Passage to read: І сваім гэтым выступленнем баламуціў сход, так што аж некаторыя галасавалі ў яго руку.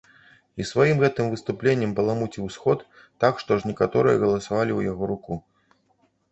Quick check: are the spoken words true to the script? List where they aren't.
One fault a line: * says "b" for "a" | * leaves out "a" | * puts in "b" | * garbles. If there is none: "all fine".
all fine